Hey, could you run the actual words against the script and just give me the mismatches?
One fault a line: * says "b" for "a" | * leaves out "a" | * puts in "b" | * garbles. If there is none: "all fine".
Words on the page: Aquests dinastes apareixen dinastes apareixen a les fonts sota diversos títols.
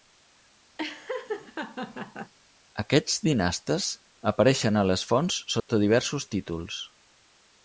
* leaves out "dinastes apareixen"